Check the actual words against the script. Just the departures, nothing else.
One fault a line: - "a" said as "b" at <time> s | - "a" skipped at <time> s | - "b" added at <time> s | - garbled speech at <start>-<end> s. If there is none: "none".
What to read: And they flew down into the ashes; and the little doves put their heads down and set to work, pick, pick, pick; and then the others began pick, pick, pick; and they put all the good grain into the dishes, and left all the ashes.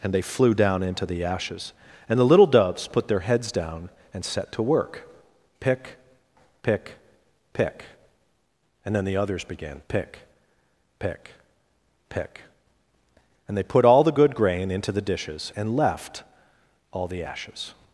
none